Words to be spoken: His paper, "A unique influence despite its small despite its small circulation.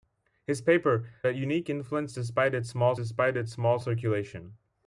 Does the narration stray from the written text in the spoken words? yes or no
no